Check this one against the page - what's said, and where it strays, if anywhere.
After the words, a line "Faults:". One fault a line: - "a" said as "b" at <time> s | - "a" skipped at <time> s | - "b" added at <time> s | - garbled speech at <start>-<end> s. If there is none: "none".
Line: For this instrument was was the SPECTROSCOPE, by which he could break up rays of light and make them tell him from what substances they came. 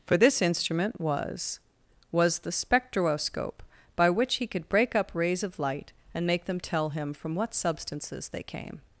For this instrument was was the SPECTROSCOPE, by which he could break up rays of light and make them tell him from what substances they came.
Faults:
none